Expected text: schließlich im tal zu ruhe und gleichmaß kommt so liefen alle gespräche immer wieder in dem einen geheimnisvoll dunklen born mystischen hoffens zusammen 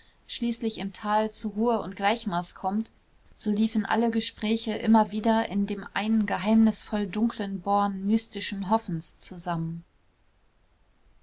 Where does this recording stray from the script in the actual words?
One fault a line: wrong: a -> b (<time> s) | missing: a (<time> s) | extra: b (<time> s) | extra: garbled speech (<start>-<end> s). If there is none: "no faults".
no faults